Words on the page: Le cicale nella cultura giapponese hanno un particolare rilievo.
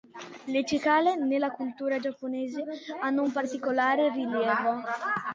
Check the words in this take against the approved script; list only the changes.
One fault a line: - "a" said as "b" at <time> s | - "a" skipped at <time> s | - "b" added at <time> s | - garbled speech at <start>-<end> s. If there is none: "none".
none